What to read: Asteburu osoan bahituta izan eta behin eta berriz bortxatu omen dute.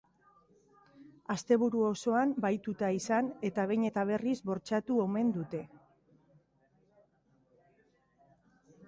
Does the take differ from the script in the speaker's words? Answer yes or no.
no